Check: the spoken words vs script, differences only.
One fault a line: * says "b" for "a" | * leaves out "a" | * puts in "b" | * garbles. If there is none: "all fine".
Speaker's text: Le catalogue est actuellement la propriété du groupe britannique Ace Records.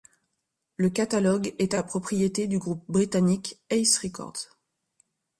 * leaves out "actuellement"